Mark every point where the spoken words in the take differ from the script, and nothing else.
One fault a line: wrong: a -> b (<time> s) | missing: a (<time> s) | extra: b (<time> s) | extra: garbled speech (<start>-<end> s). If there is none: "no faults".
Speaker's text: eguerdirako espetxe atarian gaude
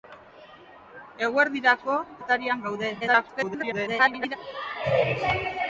missing: espetxe (2.0 s)
extra: garbled speech (3.0-4.4 s)